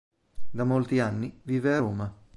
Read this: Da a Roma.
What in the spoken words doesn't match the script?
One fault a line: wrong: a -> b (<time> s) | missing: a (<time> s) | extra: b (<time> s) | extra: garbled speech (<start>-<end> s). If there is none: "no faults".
extra: molti anni vive (0.6 s)